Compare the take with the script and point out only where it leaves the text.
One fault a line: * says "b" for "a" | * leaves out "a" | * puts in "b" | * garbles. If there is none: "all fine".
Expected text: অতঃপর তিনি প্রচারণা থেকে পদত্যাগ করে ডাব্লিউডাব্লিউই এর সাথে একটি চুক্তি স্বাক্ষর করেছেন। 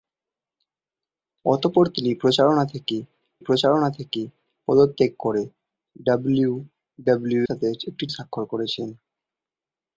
* puts in "প্রচারণা থেকে"
* leaves out "এর"
* leaves out "চুক্তি"